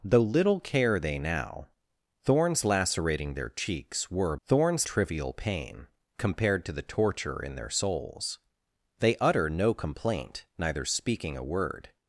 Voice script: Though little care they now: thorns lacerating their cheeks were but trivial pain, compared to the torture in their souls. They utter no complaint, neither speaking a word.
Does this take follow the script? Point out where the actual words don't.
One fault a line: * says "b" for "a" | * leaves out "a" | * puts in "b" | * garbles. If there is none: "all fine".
* says "thorns" for "but"